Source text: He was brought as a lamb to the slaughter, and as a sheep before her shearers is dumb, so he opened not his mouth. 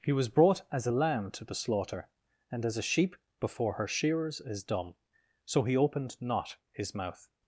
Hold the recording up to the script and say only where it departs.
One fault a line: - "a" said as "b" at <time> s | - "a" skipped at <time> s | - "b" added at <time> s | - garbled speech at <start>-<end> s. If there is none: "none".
none